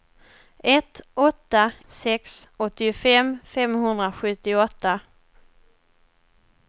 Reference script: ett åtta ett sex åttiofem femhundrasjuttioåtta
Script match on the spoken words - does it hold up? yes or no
no